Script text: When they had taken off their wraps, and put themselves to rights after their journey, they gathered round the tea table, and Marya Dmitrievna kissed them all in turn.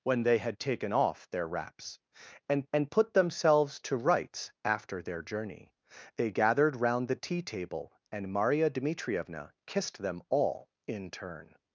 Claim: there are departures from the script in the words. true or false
true